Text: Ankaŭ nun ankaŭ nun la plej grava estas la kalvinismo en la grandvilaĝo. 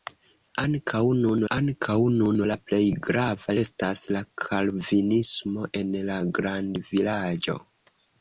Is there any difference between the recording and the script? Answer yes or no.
no